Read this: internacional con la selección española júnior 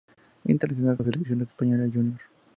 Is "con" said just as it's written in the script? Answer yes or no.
no